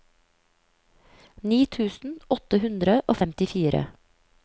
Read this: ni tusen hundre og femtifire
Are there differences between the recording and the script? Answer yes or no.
yes